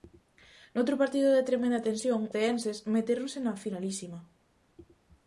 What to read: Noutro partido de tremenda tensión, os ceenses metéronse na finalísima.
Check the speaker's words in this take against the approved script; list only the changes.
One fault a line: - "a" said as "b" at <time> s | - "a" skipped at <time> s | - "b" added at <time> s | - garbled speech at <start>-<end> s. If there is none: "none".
- "os" skipped at 2.2 s